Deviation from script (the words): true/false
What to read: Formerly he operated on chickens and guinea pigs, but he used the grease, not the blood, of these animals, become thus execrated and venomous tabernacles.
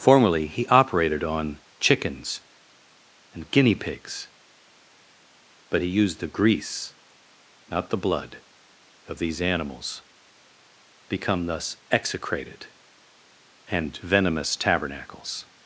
false